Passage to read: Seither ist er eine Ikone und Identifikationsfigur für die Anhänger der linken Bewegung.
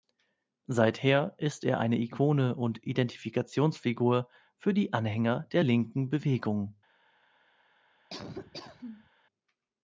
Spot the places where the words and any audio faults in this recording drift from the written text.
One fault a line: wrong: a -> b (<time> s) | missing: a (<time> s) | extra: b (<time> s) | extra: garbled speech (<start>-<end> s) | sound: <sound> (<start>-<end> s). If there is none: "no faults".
sound: laugh (8.1-9.1 s)